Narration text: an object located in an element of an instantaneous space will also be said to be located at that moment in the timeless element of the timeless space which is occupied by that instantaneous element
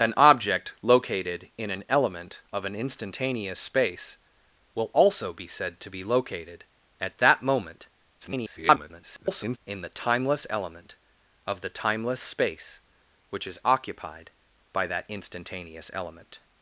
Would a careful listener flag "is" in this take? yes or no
no